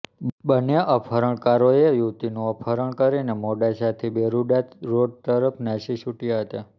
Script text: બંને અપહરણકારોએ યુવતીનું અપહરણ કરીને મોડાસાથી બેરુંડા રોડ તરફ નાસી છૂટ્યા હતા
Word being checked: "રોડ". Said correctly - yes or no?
yes